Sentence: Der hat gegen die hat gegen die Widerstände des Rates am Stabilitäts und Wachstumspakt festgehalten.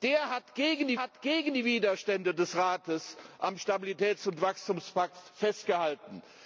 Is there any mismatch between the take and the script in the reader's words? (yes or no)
no